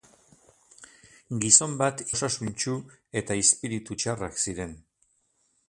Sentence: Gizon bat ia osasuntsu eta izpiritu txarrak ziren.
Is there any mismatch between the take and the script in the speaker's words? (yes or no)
yes